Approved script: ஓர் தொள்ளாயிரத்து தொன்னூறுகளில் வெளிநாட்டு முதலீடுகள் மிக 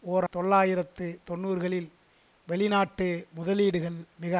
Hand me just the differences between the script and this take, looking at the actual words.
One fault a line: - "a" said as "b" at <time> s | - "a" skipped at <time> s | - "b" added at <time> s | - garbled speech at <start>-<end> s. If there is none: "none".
none